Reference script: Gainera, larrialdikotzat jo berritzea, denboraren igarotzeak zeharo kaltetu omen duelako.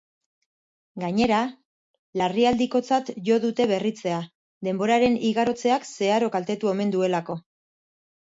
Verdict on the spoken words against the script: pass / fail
fail